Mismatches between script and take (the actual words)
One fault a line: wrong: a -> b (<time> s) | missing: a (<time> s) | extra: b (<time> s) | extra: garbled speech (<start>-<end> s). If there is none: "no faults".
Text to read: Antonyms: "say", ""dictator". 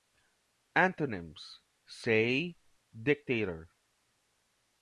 no faults